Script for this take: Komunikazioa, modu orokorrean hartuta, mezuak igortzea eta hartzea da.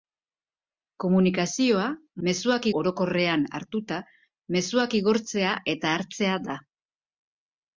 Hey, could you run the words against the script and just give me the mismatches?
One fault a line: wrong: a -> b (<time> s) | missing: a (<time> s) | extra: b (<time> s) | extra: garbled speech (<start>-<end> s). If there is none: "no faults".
wrong: modu -> mezuak (2.3 s)